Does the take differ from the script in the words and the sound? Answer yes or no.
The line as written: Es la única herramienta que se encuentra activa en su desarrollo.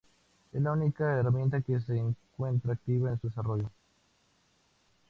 yes